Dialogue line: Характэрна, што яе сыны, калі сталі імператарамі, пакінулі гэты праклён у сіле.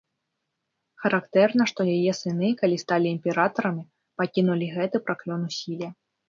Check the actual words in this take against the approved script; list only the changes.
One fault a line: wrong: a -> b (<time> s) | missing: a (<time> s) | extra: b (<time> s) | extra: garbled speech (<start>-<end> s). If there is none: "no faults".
no faults